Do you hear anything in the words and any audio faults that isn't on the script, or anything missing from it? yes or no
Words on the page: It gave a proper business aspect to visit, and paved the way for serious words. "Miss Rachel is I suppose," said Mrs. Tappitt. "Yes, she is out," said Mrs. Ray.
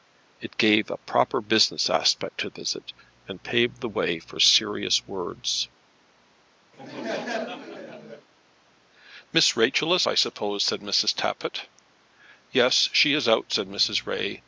yes